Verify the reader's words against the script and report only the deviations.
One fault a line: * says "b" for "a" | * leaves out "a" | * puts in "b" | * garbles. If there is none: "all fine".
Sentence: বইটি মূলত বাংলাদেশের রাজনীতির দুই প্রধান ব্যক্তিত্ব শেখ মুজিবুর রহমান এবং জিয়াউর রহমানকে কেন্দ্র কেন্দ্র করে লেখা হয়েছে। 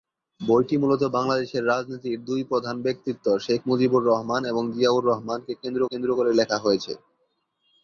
all fine